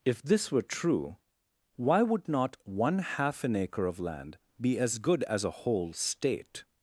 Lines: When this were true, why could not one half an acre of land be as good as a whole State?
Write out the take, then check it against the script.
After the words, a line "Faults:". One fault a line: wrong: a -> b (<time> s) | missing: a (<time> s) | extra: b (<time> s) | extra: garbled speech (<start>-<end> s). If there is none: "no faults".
If this were true, why would not one half an acre of land be as good as a whole State?
Faults:
wrong: When -> If (0.0 s)
wrong: could -> would (2.0 s)